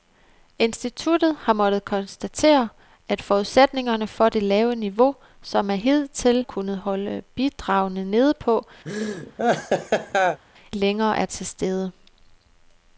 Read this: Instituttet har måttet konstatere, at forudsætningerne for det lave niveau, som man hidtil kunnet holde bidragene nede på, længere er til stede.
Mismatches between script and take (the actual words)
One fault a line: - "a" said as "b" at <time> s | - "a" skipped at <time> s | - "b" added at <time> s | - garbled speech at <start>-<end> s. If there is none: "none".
none